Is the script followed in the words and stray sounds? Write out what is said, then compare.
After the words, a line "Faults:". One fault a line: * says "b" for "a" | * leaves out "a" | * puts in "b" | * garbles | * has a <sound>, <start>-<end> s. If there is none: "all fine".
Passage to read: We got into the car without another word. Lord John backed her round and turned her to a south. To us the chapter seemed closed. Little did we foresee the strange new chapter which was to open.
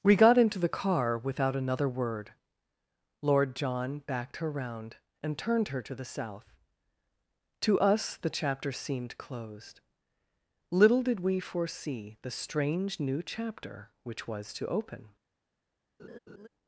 We got into the car without another word. Lord John backed her round and turned her to the south. To us the chapter seemed closed. Little did we foresee the strange new chapter which was to open.
Faults:
* says "the" for "a"
* has a laugh, 16.0-16.5 s